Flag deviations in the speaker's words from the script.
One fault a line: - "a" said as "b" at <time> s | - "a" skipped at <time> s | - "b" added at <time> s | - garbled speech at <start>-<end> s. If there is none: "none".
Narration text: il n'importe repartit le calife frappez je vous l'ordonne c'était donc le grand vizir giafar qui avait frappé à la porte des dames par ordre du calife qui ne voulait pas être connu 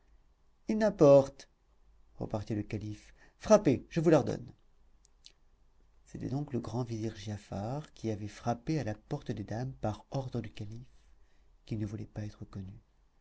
none